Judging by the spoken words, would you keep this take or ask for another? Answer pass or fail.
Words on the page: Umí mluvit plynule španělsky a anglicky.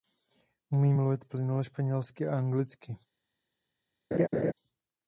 pass